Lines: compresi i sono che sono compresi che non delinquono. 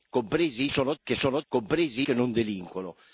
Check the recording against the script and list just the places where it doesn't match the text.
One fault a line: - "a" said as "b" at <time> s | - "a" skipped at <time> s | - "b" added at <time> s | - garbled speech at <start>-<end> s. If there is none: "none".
none